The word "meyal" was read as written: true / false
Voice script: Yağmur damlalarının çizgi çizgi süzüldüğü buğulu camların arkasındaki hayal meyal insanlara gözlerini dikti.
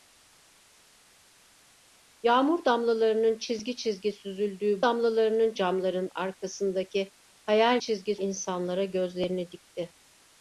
false